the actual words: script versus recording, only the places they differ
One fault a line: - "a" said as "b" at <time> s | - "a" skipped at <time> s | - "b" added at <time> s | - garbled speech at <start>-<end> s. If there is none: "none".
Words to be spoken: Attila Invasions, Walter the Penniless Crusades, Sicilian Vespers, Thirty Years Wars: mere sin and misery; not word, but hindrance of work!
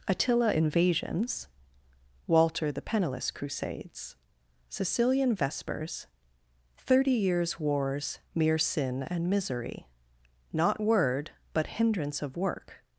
none